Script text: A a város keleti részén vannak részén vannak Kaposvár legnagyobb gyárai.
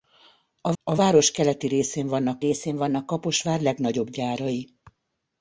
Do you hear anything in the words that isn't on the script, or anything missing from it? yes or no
no